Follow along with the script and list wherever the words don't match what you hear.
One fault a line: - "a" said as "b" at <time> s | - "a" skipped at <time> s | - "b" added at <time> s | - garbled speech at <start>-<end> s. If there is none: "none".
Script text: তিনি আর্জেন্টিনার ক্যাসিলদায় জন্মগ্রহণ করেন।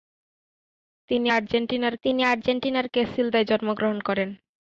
- "তিনি আর্জেন্টিনার" added at 2.0 s